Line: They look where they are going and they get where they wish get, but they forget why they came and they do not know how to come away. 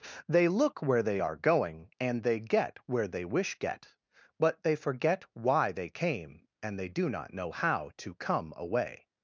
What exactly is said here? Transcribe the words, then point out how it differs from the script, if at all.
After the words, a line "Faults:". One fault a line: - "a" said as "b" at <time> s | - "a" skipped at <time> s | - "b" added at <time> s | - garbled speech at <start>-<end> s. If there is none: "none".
They look where they are going and they get where they wish get, but they forget why they came and they do not know how to come away.
Faults:
none